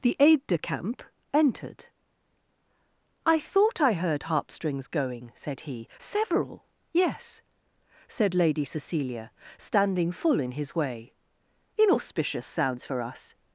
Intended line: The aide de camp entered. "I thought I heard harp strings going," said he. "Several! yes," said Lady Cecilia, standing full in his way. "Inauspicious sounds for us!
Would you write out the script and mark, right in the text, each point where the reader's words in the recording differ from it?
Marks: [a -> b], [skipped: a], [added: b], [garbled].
The aide de camp entered. "I thought I heard harp strings going," said he. "Several! yes," said Lady Cecilia, standing full in his way. "Inauspicious sounds for us!